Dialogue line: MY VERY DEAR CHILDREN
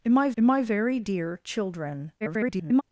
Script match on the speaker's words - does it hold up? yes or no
no